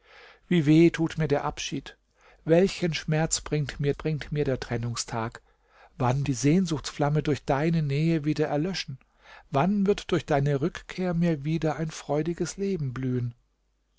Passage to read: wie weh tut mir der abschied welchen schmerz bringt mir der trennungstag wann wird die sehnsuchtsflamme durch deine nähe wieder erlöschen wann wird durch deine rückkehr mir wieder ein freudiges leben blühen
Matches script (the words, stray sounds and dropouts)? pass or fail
fail